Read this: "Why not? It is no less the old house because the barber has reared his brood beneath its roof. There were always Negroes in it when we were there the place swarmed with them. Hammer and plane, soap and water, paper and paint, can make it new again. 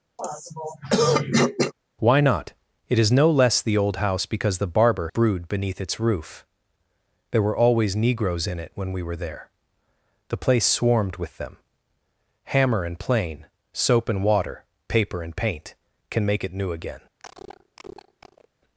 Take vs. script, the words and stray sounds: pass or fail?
fail